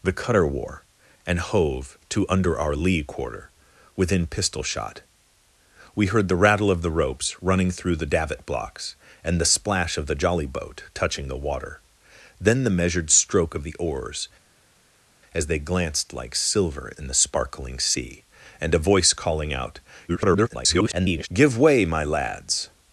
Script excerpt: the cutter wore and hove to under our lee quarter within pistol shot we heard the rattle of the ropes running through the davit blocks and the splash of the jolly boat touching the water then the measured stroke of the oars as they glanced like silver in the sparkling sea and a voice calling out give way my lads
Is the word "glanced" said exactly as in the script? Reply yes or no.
yes